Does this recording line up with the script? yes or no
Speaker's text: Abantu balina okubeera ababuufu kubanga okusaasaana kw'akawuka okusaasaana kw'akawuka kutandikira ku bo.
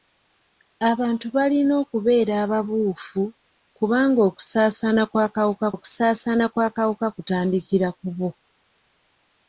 yes